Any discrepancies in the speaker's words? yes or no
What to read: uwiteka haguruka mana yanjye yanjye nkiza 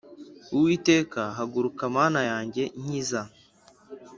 yes